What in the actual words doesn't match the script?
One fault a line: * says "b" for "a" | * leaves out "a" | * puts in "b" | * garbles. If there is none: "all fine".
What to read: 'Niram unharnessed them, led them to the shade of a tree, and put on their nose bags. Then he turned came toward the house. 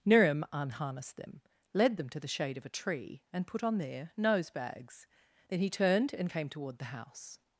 * puts in "and"